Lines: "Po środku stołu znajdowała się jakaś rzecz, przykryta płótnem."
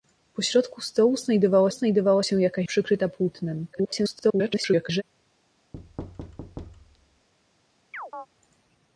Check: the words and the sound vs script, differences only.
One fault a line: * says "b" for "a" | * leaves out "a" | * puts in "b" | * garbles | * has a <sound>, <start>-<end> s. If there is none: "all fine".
* puts in "znajdowała"
* leaves out "rzecz"
* garbles
* has a thud, 5.7-7.3 s
* has a chirp, 7.9-8.3 s